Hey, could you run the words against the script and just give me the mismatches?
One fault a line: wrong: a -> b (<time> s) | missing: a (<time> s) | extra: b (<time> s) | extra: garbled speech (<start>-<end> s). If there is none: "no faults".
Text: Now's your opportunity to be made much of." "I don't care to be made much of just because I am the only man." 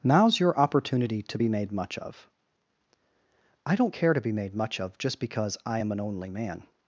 wrong: the -> an (5.9 s)